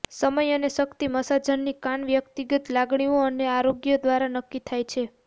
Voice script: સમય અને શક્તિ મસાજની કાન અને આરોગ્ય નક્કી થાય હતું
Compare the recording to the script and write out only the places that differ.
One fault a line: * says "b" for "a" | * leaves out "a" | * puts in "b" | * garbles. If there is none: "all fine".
* puts in "વ્યક્તિગત લાગણીઓ"
* puts in "દ્વારા"
* says "છે" for "હતું"